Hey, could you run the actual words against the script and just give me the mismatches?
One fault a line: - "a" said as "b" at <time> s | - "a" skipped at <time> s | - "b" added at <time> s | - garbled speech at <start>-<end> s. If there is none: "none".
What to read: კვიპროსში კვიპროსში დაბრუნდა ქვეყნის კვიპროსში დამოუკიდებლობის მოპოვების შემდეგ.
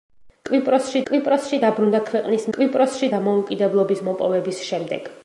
none